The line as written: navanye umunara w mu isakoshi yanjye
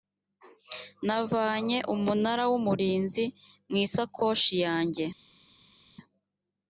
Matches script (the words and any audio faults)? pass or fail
fail